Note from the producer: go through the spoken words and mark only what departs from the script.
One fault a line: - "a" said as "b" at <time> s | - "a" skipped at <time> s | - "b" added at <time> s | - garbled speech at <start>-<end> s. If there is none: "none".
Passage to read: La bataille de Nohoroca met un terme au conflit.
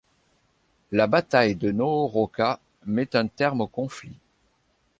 none